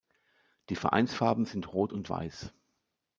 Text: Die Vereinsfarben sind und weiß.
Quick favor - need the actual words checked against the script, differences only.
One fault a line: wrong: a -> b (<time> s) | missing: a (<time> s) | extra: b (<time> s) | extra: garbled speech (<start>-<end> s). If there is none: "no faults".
extra: rot (1.7 s)